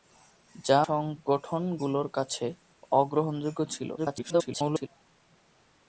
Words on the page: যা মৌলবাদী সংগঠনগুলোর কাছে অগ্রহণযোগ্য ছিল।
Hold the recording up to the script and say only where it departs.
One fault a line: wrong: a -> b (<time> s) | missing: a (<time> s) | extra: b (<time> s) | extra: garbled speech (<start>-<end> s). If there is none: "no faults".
missing: মৌলবাদী (0.8 s)
extra: garbled speech (4.0-4.9 s)